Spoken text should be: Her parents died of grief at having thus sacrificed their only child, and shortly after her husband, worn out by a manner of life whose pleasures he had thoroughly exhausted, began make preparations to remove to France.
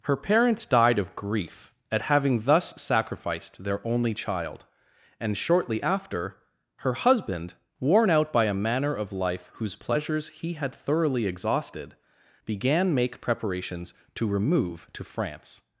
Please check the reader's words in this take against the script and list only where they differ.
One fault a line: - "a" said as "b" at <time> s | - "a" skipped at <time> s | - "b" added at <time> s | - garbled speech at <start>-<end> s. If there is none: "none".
none